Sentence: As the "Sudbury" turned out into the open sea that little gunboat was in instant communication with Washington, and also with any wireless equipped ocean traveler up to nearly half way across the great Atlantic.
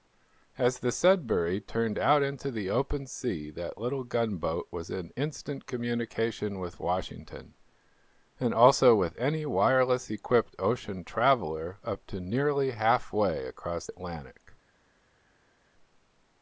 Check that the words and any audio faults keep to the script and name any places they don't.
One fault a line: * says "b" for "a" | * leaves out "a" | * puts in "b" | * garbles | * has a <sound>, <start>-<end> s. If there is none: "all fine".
* leaves out "the great"